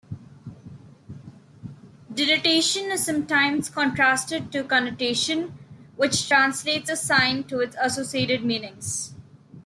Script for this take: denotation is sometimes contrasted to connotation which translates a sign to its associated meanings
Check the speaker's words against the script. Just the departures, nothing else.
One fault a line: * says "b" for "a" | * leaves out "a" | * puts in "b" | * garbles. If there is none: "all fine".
all fine